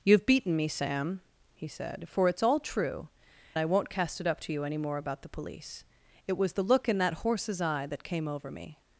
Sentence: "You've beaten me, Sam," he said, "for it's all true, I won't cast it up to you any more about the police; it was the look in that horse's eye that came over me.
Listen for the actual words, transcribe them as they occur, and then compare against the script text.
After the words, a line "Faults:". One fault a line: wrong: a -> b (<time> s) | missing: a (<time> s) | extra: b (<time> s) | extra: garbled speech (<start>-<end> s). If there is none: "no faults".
"You've beaten me, Sam," he said, "for it's all true, I won't cast it up to you any more about the police; it was the look in that horse's eye that came over me.
Faults:
no faults